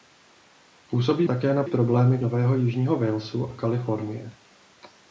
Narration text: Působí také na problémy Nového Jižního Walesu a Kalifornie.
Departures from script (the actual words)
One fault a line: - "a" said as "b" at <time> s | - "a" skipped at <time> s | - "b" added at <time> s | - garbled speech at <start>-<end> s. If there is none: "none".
none